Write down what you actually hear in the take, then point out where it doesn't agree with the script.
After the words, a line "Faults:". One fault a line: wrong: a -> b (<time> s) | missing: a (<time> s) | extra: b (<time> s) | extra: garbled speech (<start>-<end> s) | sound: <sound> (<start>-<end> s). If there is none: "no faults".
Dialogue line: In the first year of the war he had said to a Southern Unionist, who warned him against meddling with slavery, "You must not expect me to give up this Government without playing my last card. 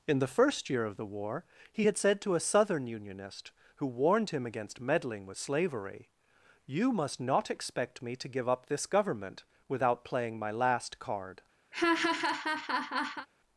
In the first year of the war he had said to a Southern Unionist, who warned him against meddling with slavery, "You must not expect me to give up this Government without playing my last card.
Faults:
sound: laugh (11.7-13.3 s)